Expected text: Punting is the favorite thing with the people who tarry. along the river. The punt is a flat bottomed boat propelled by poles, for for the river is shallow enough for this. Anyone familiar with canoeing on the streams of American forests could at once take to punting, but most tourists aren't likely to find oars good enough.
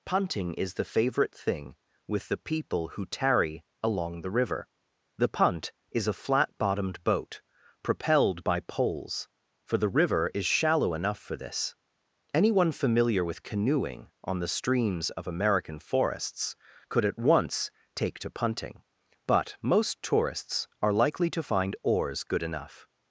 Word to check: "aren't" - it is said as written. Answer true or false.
false